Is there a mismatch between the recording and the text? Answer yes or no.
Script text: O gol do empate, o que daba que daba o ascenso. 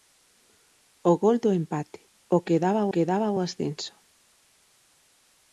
no